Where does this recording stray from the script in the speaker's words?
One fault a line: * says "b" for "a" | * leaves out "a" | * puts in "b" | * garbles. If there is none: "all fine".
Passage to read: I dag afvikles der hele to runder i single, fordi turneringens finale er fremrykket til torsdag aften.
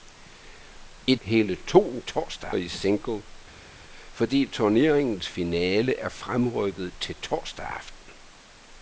* leaves out "dag afvikles der"
* says "torsdag" for "runder"